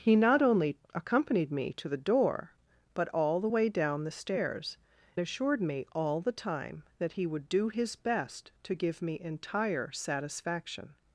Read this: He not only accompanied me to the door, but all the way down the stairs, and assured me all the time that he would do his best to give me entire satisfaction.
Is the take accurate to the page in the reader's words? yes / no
no